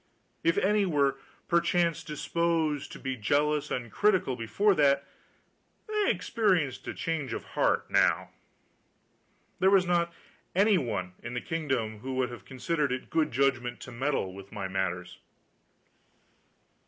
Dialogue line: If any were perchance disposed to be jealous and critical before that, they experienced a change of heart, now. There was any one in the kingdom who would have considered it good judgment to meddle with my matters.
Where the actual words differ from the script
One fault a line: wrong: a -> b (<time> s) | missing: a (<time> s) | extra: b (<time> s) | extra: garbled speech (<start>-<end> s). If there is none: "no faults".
extra: not (9.8 s)